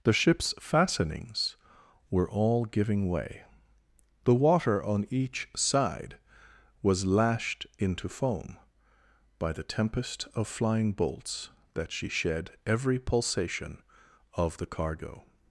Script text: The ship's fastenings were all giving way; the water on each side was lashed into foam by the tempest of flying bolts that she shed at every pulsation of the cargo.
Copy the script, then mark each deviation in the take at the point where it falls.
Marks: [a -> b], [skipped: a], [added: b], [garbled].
The ship's fastenings were all giving way; the water on each side was lashed into foam by the tempest of flying bolts that she shed [skipped: at] every pulsation of the cargo.